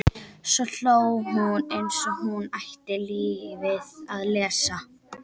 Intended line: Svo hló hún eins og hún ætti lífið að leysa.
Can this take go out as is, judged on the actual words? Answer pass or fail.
pass